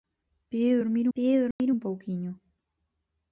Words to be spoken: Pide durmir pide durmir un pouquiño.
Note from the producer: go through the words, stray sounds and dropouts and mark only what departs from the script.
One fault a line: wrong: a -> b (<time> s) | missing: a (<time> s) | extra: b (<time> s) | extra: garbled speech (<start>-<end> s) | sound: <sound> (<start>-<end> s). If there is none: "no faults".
sound: dropout (1.5-1.6 s)